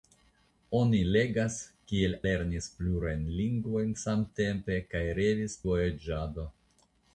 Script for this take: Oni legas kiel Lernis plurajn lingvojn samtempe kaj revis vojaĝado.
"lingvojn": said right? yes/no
yes